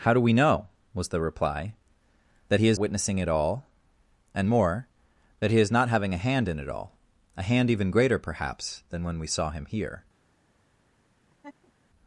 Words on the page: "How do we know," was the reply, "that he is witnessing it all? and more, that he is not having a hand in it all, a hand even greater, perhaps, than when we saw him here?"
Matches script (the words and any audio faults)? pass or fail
fail